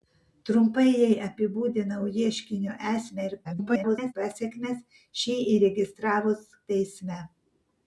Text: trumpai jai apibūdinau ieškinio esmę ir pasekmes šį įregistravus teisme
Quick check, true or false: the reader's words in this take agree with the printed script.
false